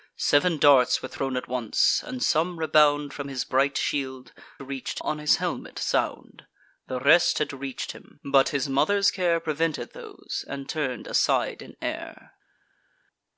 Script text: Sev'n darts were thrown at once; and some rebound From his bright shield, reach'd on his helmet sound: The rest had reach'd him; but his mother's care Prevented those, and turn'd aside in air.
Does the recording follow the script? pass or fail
pass